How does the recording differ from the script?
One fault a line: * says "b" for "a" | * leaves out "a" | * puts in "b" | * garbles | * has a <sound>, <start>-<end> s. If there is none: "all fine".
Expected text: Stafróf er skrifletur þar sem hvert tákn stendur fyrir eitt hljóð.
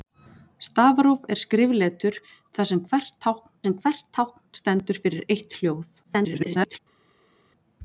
* puts in "sem hvert tákn"
* garbles